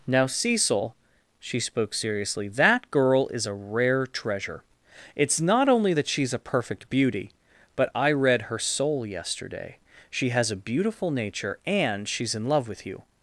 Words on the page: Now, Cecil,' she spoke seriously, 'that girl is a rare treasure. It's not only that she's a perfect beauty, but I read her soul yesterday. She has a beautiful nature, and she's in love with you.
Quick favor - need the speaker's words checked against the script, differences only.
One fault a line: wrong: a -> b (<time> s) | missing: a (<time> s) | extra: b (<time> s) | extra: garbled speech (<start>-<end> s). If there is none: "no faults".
no faults